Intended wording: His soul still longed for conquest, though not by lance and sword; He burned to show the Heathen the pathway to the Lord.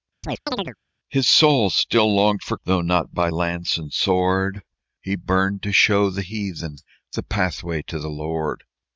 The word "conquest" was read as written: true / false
false